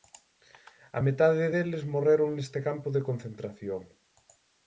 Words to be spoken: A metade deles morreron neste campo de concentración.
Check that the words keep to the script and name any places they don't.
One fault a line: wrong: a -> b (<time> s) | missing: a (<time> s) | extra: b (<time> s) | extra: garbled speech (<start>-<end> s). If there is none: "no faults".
no faults